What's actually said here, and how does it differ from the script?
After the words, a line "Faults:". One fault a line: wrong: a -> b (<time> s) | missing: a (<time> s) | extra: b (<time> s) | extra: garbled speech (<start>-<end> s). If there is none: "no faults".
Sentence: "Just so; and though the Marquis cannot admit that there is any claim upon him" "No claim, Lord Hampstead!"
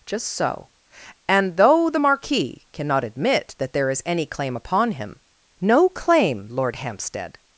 "Just so; and though the Marquis cannot admit that there is any claim upon him" "No claim, Lord Hampstead!"
Faults:
no faults